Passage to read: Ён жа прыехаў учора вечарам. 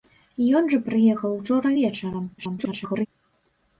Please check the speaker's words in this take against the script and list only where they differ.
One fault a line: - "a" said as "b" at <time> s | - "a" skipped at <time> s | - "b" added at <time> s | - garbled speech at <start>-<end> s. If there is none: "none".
- garbled speech at 2.4-3.1 s